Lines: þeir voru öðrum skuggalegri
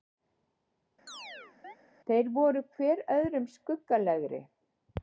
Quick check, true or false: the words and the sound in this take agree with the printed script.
false